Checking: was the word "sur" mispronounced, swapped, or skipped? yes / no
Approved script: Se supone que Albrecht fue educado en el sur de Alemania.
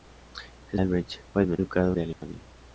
yes